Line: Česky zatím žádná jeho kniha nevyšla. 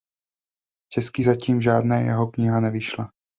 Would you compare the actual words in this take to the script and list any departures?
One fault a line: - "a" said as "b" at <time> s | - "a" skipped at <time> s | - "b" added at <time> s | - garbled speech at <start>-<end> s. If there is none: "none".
none